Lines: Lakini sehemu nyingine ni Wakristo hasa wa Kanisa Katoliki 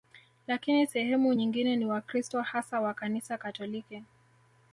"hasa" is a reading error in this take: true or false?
false